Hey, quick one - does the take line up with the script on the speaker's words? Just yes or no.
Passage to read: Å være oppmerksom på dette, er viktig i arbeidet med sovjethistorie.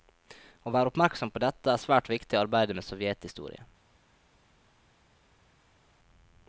no